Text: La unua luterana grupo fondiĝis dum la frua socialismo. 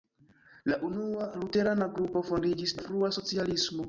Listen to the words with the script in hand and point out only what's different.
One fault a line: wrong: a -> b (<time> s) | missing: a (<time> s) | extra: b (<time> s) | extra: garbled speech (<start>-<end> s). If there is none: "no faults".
missing: dum (2.8 s)